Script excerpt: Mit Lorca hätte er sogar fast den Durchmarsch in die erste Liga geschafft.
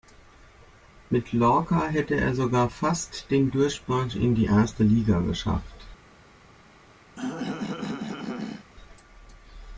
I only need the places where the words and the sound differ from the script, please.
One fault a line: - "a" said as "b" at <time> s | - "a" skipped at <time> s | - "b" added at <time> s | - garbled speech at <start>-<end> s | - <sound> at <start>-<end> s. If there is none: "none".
- throat clearing at 7.2-8.7 s